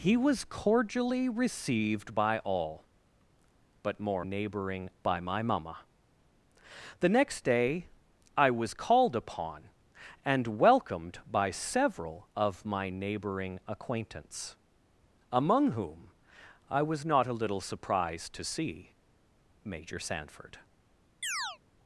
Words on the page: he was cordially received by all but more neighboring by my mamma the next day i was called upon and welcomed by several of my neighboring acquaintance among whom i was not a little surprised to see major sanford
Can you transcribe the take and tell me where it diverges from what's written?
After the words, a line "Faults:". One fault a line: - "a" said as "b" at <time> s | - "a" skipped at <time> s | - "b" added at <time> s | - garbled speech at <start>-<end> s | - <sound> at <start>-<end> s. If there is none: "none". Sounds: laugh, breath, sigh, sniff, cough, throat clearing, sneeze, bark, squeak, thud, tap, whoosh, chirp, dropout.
he was cordially received by all but more neighboring by my mamma the next day i was called upon and welcomed by several of my neighboring acquaintance among whom i was not a little surprised to see major sanford
Faults:
- chirp at 21.2-21.6 s